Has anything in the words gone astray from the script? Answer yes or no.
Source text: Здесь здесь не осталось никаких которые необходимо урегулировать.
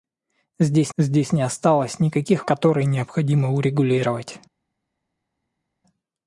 no